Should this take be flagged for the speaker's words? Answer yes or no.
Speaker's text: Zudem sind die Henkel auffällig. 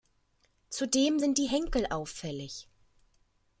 no